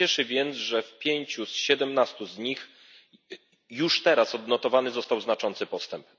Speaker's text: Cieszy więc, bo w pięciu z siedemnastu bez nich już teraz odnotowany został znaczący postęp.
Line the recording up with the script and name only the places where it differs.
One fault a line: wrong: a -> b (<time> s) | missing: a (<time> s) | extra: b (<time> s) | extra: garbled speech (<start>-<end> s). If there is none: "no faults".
wrong: bo -> że (0.6 s)
wrong: bez -> z (2.2 s)